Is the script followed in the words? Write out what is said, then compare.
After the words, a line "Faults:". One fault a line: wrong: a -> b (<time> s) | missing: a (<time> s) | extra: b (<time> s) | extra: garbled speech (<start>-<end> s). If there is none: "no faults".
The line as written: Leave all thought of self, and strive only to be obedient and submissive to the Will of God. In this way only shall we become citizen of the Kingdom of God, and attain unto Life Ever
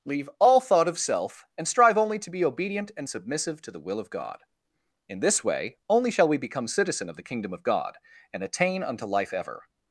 Leave all thought of self, and strive only to be obedient and submissive to the Will of God. In this way only shall we become citizen of the Kingdom of God, and attain unto Life Ever
Faults:
no faults